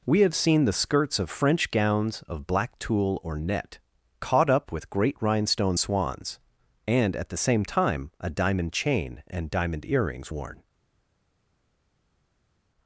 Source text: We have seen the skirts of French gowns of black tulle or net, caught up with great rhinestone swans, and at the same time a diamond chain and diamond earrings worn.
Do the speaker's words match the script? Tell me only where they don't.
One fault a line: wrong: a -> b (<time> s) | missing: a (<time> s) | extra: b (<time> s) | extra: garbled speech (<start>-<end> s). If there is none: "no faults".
no faults